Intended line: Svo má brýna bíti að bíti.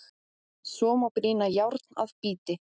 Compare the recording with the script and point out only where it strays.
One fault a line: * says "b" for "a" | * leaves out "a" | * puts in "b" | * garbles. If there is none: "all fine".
* says "járn" for "bíti"